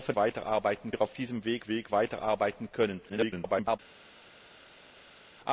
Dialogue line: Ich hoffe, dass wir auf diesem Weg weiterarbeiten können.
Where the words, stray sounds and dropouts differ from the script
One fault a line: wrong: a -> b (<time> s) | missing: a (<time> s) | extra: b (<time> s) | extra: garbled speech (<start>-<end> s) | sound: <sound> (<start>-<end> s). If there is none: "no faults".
wrong: dass -> weiterarbeiten (0.2 s)
extra: Weg (1.7 s)
extra: garbled speech (3.1-3.8 s)